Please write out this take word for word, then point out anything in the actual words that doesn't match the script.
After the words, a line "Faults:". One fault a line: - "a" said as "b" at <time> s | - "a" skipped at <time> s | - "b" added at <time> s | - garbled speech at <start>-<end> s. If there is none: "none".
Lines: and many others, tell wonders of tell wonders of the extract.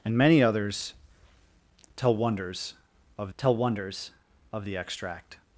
and many others, tell wonders of tell wonders of the extract.
Faults:
none